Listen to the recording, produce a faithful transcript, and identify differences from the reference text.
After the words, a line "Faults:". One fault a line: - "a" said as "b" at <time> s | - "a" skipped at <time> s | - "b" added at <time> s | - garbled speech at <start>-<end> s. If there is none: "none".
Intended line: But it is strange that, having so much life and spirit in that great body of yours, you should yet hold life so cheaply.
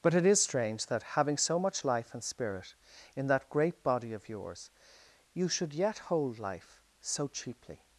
But it is strange that, having so much life and spirit in that great body of yours, you should yet hold life so cheaply.
Faults:
none